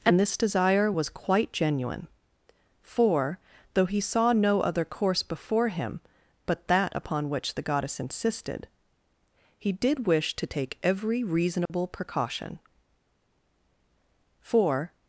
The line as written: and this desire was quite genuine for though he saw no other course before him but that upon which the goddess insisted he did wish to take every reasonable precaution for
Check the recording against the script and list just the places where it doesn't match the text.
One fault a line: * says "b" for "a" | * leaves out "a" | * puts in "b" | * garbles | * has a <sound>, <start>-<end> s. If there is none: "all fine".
* has a dropout, 11.7-11.7 s